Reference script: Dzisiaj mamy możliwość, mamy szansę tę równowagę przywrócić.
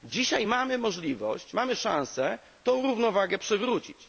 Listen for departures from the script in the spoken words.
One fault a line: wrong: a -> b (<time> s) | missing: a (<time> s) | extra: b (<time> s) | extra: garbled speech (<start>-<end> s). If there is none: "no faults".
no faults